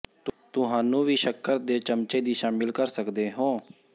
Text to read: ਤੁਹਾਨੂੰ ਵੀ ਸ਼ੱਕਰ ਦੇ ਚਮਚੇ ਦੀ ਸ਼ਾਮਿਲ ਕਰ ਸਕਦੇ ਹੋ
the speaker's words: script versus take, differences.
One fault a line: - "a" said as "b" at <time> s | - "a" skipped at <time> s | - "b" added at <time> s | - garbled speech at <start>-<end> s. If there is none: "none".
none